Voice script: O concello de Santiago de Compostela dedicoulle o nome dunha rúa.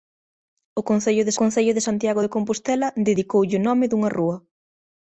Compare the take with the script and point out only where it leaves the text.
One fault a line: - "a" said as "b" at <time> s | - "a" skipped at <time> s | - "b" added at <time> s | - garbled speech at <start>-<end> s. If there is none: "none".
- "concello de" added at 1.4 s